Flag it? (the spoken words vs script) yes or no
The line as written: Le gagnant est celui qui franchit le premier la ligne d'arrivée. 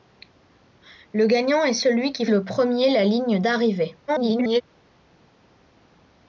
yes